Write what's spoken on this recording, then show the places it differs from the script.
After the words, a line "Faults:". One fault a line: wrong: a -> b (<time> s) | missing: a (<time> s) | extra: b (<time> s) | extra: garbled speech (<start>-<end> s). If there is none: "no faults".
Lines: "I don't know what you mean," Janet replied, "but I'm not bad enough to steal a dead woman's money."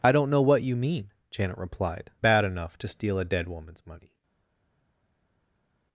"I don't know what you mean," Janet replied, "bad enough to steal a dead woman's money."
Faults:
missing: but I'm not (2.1 s)